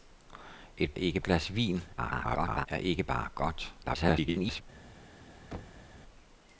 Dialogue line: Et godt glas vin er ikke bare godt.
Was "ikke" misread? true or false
false